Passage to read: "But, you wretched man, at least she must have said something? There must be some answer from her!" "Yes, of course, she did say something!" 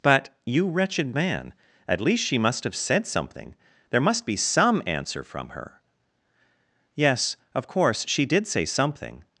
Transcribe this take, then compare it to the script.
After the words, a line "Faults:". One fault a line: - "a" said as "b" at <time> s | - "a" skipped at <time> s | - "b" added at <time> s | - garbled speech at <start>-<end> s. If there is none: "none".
"But, you wretched man, at least she must have said something? There must be some answer from her!" "Yes, of course, she did say something!"
Faults:
none